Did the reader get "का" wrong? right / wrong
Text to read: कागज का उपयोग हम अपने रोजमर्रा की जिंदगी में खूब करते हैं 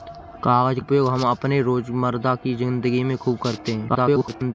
wrong